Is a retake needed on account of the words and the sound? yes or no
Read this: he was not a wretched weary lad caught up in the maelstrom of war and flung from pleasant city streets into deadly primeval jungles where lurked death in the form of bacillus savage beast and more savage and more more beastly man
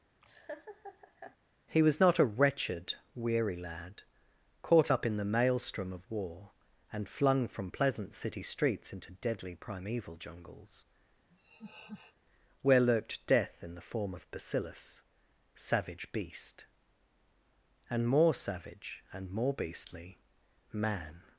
yes